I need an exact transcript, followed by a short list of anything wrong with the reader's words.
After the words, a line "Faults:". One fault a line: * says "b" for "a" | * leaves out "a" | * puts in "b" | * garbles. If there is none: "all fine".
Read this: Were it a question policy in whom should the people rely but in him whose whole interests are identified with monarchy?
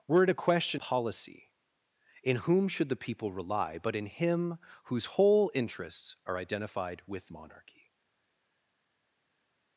Were it a question policy in whom should the people rely but in him whose whole interests are identified with monarchy?
Faults:
all fine